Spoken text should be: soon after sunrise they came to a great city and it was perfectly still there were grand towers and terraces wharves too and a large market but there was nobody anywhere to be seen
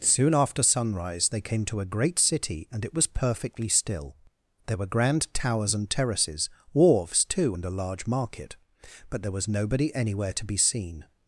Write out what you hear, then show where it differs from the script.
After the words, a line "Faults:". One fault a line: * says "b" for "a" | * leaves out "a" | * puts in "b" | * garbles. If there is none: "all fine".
soon after sunrise they came to a great city and it was perfectly still there were grand towers and terraces wharves too and a large market but there was nobody anywhere to be seen
Faults:
all fine